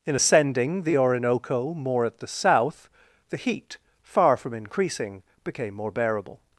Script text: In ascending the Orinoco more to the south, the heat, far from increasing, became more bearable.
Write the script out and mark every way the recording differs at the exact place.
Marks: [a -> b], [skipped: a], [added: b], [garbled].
In ascending the Orinoco more [to -> at] the south, the heat, far from increasing, became more bearable.